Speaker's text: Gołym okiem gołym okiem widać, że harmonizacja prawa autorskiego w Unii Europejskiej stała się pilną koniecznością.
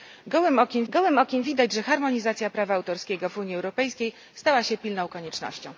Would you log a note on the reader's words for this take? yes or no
no